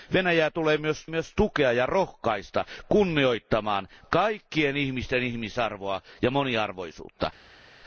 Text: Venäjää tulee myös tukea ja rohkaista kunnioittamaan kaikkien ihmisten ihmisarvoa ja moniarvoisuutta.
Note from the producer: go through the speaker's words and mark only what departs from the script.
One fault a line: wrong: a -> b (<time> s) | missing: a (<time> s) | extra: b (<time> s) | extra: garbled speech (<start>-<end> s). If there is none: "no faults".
extra: myös (1.1 s)